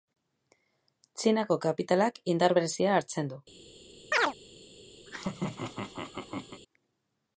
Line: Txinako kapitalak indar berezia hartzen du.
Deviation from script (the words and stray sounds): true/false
true